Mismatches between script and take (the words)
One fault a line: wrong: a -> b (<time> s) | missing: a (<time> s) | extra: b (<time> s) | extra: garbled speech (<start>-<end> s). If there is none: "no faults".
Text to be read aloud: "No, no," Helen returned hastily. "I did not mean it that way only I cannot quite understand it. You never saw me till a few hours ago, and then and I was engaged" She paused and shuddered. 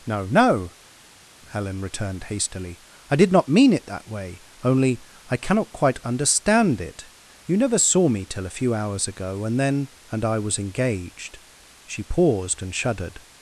no faults